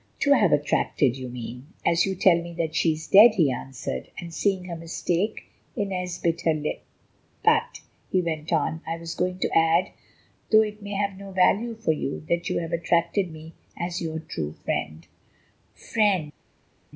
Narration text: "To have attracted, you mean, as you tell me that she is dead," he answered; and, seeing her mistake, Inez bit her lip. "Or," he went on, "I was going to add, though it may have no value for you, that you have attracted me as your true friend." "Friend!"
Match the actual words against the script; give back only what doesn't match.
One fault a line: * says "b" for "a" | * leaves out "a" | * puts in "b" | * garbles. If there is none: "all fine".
* says "But" for "Or"